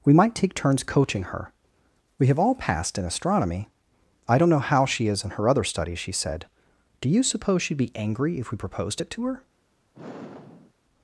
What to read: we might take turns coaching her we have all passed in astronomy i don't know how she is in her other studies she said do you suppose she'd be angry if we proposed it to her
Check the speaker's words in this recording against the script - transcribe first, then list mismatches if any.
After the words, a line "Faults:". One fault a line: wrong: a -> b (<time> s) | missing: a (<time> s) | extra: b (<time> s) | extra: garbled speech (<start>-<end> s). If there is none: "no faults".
we might take turns coaching her we have all passed in astronomy i don't know how she is in her other studies she said do you suppose she'd be angry if we proposed it to her
Faults:
no faults